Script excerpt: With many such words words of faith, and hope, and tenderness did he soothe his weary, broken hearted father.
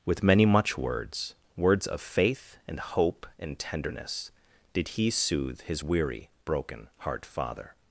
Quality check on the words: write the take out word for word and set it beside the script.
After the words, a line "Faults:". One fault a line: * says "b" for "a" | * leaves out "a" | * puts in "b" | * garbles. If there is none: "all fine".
With many much words words of faith, and hope, and tenderness did he soothe his weary, broken heart father.
Faults:
* says "much" for "such"
* says "heart" for "hearted"